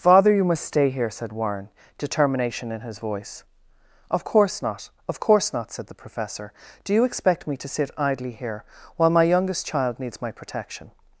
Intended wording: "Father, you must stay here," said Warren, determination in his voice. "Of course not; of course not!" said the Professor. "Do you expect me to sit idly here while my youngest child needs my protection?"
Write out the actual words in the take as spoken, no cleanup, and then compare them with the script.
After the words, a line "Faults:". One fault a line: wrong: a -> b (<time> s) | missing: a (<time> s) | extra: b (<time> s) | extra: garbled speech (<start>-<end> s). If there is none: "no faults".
"Father, you must stay here," said Warren, determination in his voice. "Of course not; of course not!" said the Professor. "Do you expect me to sit idly here while my youngest child needs my protection?"
Faults:
no faults